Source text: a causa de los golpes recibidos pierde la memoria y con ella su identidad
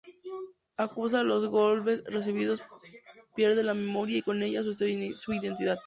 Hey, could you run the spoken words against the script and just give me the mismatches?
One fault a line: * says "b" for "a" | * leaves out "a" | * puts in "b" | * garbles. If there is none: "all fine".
all fine